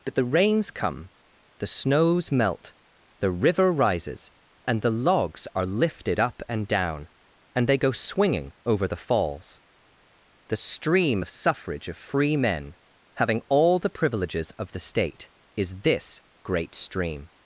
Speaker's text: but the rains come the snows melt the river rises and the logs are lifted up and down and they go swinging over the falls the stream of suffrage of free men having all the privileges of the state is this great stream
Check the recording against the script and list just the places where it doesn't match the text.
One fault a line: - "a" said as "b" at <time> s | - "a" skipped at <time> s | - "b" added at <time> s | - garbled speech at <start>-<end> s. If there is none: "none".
none